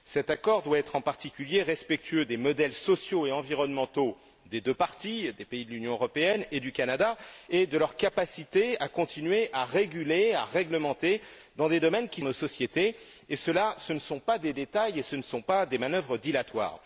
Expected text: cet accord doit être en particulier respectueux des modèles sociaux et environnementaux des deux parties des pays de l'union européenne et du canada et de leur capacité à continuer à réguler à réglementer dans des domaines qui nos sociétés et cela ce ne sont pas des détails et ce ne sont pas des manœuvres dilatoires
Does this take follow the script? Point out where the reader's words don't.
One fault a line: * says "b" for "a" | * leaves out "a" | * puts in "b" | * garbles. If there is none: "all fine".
all fine